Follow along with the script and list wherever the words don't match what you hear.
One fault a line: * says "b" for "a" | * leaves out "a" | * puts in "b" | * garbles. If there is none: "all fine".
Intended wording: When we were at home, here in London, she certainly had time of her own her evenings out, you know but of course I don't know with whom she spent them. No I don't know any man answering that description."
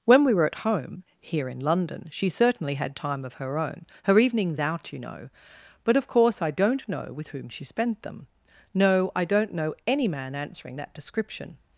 all fine